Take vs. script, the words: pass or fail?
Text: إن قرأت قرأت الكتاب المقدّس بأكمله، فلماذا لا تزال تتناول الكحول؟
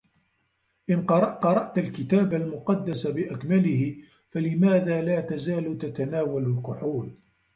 pass